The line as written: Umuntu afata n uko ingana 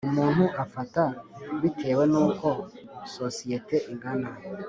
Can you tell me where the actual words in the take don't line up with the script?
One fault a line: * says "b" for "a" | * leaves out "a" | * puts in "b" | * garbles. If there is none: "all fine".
* puts in "bitewe"
* puts in "sosiyete"